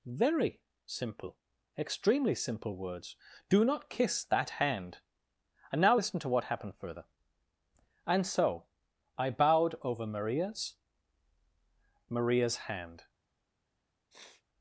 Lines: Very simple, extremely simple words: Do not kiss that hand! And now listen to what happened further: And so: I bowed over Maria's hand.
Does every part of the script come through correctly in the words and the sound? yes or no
no